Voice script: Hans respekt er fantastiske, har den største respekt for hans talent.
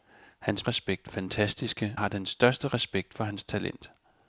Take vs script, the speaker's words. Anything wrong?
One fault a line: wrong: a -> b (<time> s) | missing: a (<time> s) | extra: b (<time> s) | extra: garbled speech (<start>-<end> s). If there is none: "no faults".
no faults